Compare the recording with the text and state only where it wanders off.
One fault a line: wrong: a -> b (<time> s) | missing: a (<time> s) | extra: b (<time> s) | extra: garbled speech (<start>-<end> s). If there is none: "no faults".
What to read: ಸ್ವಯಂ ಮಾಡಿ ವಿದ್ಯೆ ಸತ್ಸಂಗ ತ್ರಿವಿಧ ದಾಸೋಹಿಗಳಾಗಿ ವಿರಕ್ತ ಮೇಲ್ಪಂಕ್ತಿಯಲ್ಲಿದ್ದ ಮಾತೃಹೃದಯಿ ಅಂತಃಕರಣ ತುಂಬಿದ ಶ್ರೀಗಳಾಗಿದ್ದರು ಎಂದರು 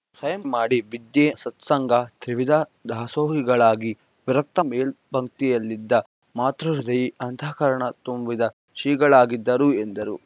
no faults